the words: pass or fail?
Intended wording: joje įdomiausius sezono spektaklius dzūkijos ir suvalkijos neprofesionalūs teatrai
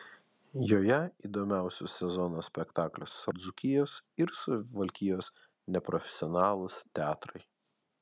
pass